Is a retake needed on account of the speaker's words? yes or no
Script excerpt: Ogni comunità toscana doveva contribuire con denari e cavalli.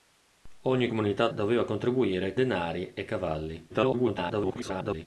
yes